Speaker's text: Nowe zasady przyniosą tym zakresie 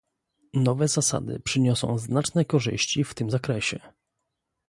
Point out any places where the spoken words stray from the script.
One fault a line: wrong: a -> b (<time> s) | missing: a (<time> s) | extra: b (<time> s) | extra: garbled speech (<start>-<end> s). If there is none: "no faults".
extra: znaczne korzyści w (2.0 s)